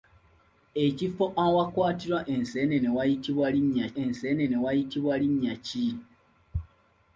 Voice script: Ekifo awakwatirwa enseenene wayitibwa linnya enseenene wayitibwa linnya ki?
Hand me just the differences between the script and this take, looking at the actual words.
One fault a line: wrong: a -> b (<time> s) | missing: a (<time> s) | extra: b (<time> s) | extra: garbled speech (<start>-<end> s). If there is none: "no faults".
no faults